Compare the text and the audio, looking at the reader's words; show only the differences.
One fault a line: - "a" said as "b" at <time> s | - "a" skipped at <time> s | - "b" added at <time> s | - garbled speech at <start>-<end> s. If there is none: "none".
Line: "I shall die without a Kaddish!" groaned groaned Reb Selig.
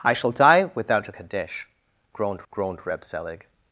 none